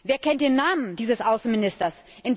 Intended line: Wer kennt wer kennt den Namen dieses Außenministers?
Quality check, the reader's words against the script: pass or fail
fail